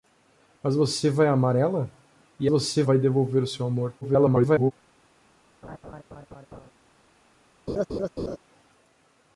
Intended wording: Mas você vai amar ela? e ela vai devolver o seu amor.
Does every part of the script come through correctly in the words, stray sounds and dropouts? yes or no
no